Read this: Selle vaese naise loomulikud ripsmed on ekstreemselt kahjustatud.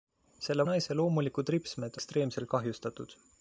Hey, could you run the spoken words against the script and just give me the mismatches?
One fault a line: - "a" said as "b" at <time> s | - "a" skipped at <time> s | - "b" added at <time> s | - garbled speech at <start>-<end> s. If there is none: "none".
- "vaese" skipped at 0.6 s
- "on" skipped at 2.0 s